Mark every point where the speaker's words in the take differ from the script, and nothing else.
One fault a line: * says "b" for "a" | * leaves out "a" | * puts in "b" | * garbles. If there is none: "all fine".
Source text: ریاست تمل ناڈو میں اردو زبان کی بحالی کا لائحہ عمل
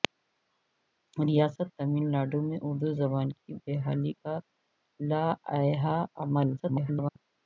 * garbles